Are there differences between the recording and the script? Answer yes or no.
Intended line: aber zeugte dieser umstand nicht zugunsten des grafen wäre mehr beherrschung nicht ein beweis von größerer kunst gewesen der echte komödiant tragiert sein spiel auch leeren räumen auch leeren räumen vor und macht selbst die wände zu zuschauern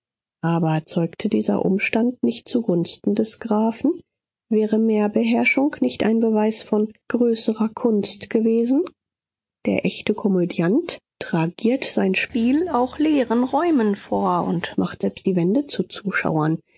yes